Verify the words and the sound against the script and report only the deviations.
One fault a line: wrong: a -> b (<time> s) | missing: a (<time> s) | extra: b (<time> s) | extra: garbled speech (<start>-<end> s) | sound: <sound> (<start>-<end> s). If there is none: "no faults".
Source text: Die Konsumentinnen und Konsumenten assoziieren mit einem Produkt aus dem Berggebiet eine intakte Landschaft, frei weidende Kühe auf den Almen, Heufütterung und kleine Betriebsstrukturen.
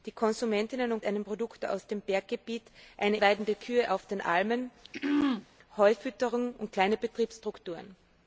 missing: Konsumenten assoziieren mit (1.0 s)
missing: intakte Landschaft frei (3.2 s)
sound: throat clearing (4.9-5.5 s)